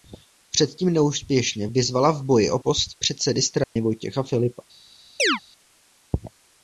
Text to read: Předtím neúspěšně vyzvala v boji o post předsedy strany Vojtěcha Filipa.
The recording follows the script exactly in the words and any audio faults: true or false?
false